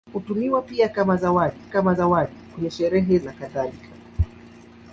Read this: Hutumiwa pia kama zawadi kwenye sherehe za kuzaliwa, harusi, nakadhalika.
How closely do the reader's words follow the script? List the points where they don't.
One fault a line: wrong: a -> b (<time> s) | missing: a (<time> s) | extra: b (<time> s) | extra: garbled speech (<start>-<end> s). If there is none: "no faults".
extra: kama zawadi (1.7 s)
missing: za kuzaliwa harusi (3.2 s)